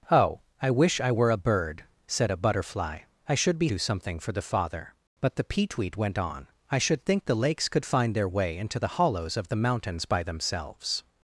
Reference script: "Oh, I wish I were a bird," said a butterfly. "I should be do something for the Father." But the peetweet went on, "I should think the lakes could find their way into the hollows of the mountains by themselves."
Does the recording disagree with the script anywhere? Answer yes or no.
no